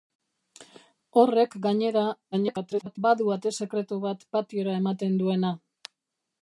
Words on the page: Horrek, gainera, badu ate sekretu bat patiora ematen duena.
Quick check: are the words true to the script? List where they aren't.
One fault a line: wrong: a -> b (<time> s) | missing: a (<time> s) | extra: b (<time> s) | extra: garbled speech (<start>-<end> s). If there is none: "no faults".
extra: garbled speech (2.3-3.0 s)